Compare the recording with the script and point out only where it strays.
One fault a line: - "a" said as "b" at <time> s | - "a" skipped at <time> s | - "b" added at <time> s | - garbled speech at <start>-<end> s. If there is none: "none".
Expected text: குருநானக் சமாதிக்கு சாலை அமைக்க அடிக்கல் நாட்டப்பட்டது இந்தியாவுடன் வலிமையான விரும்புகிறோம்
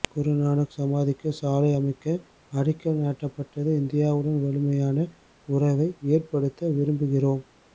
- "உறவை ஏற்படுத்த" added at 5.5 s